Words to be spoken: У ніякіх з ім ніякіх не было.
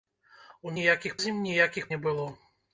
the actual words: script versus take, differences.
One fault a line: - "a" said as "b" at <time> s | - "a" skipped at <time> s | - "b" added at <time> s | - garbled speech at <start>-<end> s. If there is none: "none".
none